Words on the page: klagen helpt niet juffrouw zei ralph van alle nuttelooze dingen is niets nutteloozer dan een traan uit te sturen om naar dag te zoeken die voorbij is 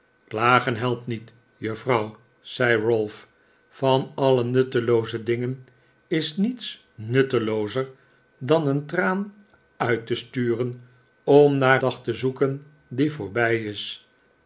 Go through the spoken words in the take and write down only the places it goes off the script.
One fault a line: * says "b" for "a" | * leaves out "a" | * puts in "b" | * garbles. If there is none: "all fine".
all fine